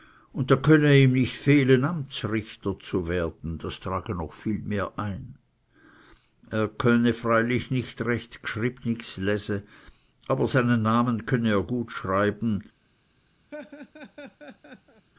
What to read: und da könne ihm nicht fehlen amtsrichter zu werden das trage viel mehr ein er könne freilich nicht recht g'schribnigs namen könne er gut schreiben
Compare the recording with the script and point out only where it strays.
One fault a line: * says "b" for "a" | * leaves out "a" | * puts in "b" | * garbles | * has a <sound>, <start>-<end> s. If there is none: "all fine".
* puts in "noch"
* puts in "lese aber seinen"
* has a laugh, 13.5-15.1 s